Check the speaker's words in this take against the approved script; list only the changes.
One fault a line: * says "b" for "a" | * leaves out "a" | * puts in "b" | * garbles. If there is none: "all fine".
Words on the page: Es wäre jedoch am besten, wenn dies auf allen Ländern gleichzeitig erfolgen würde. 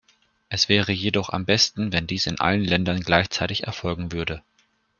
* says "in" for "auf"